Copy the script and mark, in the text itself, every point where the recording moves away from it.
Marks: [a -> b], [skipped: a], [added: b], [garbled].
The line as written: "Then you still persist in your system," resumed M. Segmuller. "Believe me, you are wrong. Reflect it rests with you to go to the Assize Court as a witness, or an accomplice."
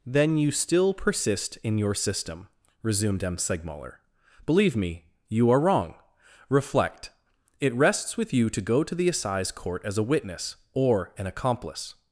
"Then you still persist in your system," resumed M. Segmuller. "Believe me, you are wrong. Reflect it rests with you to go to the Assize Court as a witness, or an accomplice."